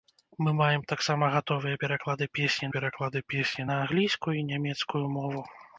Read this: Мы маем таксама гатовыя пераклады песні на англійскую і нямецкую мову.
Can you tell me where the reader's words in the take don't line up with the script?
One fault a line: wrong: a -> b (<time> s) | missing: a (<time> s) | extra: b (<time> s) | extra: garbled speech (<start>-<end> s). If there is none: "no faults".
extra: пераклады песні (2.8 s)